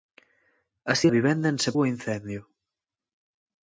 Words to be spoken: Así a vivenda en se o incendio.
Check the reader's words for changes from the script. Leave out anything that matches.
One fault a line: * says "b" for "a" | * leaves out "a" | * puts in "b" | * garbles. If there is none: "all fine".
all fine